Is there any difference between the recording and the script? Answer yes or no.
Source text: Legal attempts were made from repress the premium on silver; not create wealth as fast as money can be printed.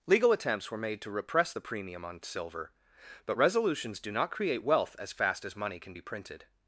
yes